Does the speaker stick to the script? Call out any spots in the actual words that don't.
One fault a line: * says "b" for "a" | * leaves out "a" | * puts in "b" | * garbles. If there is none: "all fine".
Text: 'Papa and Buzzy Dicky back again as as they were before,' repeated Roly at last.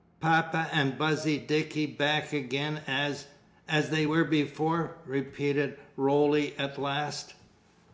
all fine